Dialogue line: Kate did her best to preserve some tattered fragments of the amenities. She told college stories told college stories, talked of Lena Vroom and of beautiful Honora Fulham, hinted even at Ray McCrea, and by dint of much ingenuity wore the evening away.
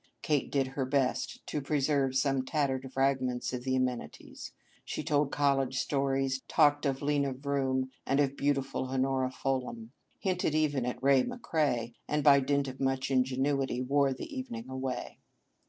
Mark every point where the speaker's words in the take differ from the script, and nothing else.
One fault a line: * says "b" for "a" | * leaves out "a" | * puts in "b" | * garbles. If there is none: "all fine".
* leaves out "told college stories"